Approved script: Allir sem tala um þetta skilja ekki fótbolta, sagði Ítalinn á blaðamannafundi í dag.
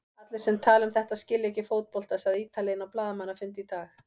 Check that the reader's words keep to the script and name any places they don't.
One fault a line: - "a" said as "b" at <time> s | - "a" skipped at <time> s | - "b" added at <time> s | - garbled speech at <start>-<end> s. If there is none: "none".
none